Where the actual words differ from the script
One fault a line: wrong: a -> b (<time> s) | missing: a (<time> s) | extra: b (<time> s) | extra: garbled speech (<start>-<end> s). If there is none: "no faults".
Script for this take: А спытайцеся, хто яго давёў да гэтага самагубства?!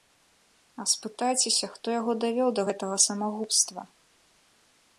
no faults